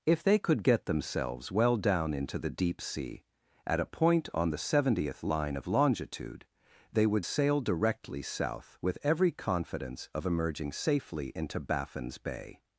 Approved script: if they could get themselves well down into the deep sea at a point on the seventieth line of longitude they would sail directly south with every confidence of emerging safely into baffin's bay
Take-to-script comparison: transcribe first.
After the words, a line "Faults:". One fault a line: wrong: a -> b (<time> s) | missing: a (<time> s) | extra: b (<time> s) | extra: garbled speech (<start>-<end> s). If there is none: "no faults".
if they could get themselves well down into the deep sea at a point on the seventieth line of longitude they would sail directly south with every confidence of emerging safely into baffin's bay
Faults:
no faults